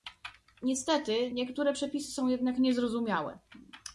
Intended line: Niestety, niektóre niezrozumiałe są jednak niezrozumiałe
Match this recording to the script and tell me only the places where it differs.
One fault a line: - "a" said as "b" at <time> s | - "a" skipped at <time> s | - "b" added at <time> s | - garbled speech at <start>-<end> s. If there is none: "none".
- "niezrozumiałe" said as "przepisy" at 1.7 s